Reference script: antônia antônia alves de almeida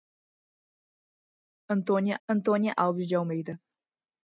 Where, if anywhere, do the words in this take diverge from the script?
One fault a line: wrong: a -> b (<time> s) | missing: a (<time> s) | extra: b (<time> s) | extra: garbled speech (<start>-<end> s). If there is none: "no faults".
no faults